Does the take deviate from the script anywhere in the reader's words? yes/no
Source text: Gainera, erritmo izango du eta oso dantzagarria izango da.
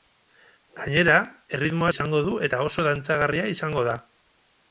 no